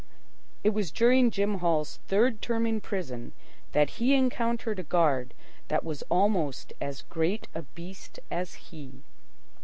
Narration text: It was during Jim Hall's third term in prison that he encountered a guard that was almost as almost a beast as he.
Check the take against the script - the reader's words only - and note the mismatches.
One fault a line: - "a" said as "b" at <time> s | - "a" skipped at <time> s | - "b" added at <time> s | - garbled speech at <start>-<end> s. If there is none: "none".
- "almost" said as "great" at 7.0 s